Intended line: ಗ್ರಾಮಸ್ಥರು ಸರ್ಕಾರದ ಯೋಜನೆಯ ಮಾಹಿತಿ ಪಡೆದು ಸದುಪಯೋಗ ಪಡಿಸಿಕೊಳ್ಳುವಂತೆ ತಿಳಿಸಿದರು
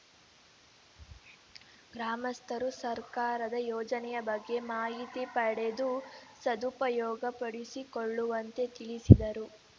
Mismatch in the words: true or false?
true